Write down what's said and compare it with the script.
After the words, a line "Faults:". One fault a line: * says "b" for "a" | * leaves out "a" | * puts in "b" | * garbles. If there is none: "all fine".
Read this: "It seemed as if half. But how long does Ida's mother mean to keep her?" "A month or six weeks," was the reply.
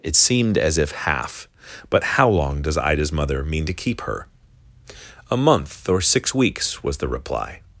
"It seemed as if half. But how long does Ida's mother mean to keep her?" "A month or six weeks," was the reply.
Faults:
all fine